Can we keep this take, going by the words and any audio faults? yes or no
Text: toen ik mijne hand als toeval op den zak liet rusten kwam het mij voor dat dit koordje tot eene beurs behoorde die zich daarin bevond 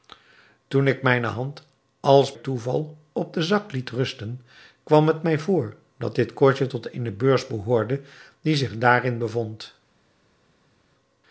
yes